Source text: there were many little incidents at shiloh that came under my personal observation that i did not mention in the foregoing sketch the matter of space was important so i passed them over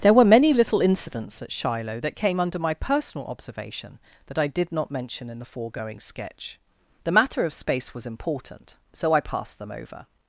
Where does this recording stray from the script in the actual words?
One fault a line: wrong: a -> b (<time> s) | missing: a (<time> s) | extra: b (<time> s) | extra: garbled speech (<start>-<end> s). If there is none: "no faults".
no faults